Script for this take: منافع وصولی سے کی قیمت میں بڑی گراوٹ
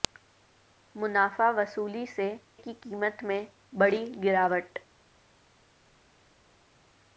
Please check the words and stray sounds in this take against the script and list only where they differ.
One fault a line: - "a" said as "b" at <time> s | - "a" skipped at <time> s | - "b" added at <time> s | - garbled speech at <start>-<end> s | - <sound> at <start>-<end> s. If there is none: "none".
none